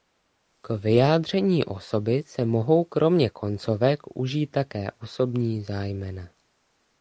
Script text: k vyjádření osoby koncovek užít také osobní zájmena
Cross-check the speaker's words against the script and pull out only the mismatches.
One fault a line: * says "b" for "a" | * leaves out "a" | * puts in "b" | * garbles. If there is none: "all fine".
* puts in "se mohou kromě"